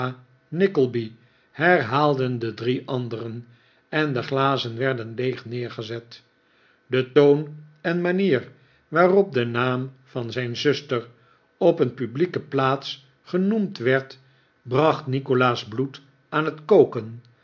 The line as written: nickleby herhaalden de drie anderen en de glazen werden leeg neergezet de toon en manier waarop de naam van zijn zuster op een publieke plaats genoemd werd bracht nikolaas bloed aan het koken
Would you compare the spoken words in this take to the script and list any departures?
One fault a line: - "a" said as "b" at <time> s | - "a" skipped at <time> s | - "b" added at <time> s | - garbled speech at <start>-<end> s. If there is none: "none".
none